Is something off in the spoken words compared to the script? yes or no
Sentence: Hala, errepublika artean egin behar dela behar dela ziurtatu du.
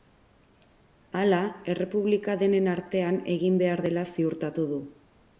yes